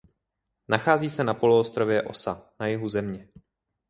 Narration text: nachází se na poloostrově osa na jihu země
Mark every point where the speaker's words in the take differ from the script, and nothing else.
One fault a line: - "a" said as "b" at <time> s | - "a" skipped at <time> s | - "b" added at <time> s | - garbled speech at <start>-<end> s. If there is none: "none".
none